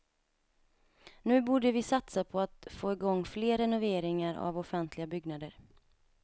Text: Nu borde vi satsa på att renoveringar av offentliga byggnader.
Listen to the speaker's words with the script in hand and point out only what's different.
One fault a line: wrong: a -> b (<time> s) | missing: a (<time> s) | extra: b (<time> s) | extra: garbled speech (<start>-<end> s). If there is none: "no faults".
extra: få igång fler (2.7 s)